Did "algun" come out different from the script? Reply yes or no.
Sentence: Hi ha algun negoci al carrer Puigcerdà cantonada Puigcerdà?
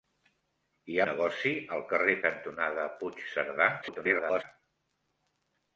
yes